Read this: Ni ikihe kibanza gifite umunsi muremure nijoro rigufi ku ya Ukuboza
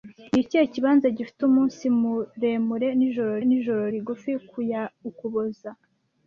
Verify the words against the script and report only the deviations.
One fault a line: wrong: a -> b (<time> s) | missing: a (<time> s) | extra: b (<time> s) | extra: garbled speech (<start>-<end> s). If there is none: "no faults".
extra: nijoro (3.5 s)